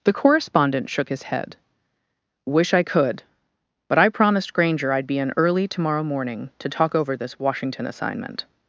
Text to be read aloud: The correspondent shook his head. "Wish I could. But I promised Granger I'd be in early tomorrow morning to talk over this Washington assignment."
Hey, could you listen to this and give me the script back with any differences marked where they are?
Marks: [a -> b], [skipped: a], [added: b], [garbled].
The correspondent shook his head. "Wish I could. But I promised Granger I'd be in early tomorrow morning to talk over this Washington assignment."